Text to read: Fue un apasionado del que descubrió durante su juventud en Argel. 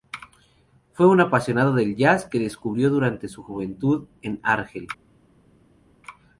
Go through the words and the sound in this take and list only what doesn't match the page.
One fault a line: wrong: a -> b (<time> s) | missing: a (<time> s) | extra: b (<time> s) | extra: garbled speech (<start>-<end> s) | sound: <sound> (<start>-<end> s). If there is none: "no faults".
extra: jazz (1.9 s)